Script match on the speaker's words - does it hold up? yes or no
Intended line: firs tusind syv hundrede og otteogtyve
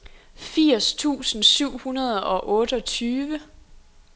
yes